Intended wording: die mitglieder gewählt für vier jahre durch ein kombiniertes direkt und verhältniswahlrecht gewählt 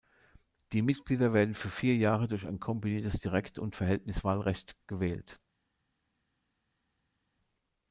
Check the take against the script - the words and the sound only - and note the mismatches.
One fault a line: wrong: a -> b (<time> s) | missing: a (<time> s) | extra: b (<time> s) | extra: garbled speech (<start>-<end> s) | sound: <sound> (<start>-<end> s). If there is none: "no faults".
wrong: gewählt -> werden (1.3 s)